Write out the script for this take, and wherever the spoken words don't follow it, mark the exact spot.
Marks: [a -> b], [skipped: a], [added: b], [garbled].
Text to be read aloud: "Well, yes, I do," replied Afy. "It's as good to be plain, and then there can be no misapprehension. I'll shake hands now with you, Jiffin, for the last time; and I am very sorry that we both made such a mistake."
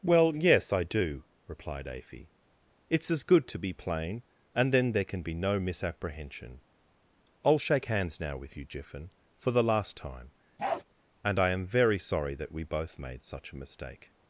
"Well, yes, I do," replied Afy. "It's as good to be plain, and then there can be no misapprehension. I'll shake hands now with you, Jiffin, for the last time; and I am very sorry that we both made such a mistake."